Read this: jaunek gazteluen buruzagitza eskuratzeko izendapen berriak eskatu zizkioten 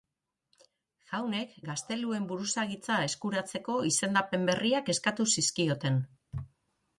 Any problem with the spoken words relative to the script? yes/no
no